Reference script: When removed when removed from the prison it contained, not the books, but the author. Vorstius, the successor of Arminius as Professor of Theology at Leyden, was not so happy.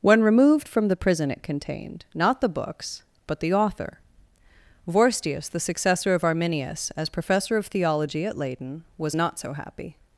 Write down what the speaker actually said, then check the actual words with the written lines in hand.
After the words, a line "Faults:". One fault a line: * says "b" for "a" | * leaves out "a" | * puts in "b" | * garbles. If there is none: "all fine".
When removed from the prison it contained, not the books, but the author. Vorstius, the successor of Arminius as Professor of Theology at Leyden, was not so happy.
Faults:
* leaves out "when removed"